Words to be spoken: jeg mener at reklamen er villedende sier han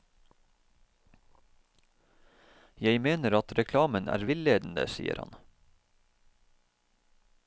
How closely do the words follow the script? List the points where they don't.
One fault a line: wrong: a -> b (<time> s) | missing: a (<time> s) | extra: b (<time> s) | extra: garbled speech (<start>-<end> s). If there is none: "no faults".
no faults